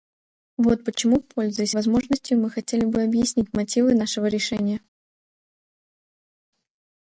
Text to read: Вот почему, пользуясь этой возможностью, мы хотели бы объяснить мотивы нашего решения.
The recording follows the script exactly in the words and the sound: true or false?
false